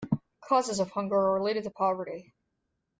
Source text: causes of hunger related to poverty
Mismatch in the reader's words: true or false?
true